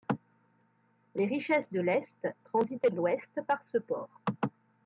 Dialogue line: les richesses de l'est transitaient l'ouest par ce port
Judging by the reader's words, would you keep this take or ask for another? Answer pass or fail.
pass